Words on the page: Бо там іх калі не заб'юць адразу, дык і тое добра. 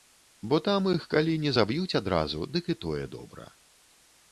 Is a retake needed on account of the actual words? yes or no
no